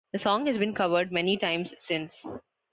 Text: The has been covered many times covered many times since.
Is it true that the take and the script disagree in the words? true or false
true